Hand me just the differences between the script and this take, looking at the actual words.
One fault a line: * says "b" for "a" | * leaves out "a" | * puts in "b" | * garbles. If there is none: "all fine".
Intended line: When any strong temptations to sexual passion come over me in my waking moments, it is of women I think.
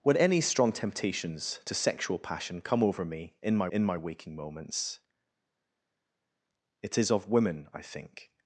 * puts in "in my"